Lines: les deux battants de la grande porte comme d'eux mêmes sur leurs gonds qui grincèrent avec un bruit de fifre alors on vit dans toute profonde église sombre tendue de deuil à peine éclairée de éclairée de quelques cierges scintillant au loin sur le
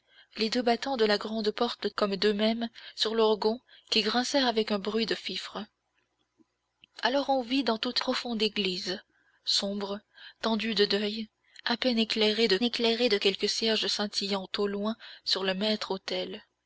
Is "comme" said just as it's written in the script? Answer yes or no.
yes